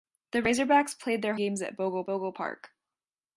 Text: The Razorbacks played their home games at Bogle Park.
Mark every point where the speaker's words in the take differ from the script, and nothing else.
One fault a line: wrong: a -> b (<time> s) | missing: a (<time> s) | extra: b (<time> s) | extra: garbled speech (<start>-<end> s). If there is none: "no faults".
missing: home (1.4 s)
extra: Bogle (2.1 s)